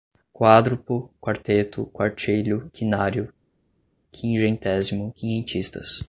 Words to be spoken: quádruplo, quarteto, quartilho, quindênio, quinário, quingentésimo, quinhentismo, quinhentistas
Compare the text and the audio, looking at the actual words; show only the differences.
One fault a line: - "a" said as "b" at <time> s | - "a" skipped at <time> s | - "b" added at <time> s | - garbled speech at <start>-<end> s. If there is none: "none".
- "quindênio" skipped at 2.6 s
- "quinhentismo" skipped at 5.1 s